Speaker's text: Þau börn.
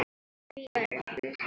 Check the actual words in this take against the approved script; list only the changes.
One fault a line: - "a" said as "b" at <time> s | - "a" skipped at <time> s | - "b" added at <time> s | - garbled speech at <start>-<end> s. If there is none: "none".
none